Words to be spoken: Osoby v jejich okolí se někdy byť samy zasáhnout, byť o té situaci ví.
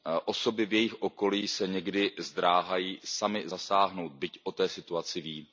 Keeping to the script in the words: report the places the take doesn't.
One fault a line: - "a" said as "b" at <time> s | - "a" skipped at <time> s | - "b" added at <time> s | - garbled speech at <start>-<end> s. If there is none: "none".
- "byť" said as "zdráhají" at 2.2 s